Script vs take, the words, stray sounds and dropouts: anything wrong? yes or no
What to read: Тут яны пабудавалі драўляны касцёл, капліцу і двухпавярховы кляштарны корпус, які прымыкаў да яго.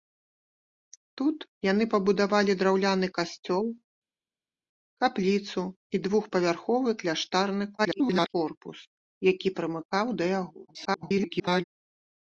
yes